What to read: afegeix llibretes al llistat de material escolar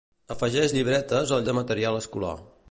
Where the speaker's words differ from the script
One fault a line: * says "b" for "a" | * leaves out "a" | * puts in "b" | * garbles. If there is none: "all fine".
* leaves out "llistat"